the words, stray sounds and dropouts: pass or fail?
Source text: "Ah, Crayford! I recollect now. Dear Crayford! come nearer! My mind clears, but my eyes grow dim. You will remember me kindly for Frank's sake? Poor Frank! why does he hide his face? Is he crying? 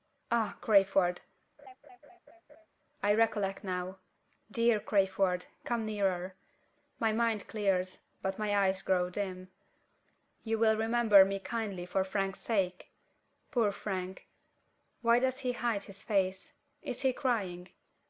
fail